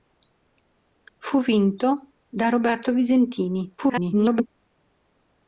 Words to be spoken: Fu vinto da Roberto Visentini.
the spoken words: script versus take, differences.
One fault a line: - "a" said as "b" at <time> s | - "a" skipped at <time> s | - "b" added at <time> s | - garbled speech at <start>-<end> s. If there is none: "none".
- garbled speech at 3.8-4.5 s